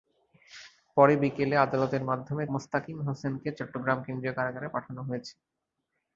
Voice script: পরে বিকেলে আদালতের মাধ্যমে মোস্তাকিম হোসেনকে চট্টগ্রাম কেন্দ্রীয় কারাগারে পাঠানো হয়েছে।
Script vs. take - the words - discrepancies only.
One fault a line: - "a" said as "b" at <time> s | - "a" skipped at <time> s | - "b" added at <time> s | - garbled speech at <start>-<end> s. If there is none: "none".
none